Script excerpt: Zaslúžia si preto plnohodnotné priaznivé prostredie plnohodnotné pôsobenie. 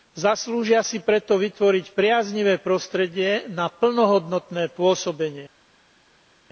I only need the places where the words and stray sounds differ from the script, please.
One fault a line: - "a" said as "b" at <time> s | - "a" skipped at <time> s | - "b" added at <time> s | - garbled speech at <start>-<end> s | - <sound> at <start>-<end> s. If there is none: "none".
- "plnohodnotné" said as "vytvoriť" at 1.4 s
- "na" added at 3.5 s